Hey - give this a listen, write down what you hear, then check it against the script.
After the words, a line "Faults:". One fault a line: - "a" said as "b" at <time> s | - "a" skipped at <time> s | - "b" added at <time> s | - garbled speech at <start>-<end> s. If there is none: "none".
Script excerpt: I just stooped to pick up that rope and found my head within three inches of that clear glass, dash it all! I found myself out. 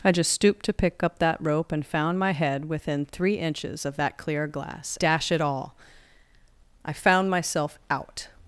I just stooped to pick up that rope and found my head within three inches of that clear glass, dash it all! I found myself out.
Faults:
none